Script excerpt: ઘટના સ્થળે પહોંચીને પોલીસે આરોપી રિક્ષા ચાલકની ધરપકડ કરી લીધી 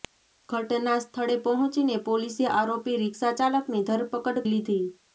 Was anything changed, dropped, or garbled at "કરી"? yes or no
yes